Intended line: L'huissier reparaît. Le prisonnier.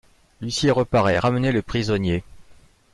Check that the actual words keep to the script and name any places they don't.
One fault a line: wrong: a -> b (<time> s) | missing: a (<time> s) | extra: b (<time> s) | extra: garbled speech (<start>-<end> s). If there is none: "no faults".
extra: Ramenez (1.2 s)